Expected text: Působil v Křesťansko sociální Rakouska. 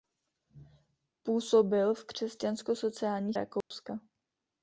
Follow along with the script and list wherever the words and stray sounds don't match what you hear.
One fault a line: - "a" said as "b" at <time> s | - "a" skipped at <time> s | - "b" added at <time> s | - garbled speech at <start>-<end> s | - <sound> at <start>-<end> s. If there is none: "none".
- dropout at 3.6-3.7 s